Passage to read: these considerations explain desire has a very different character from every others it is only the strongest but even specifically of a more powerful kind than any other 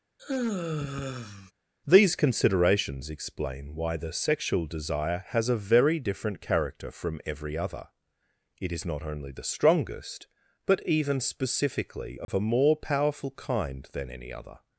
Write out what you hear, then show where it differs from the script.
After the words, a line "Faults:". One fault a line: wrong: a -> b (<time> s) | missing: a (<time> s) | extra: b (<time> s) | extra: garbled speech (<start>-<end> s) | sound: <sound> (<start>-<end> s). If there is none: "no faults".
these considerations explain why the sexual desire has a very different character from every other it is not only the strongest but even specifically of a more powerful kind than any other
Faults:
sound: sigh (0.2-1.5 s)
extra: why the sexual (3.7 s)
wrong: others -> other (7.6 s)
extra: not (8.9 s)
sound: dropout (12.2-12.3 s)